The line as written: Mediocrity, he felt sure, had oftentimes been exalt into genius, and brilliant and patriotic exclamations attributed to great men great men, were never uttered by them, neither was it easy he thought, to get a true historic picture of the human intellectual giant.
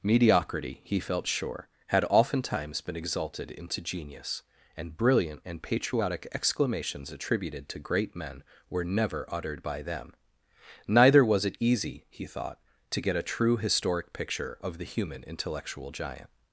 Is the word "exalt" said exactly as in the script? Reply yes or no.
no